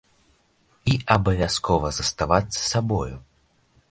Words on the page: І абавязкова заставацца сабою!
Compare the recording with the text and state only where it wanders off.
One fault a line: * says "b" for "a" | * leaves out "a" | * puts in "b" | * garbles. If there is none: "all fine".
all fine